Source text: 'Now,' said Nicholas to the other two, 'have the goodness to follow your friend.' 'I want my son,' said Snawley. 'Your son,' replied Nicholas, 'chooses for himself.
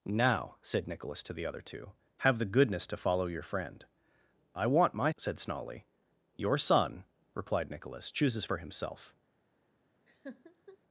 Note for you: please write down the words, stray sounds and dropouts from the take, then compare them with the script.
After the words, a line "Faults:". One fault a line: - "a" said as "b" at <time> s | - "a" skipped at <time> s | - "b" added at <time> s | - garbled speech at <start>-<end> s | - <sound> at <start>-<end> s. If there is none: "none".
'Now,' said Nicholas to the other two, 'have the goodness to follow your friend.' 'I want my,' said Snawley. 'Your son,' replied Nicholas, 'chooses for himself.
Faults:
- "son" skipped at 5.1 s
- laugh at 10.1-10.8 s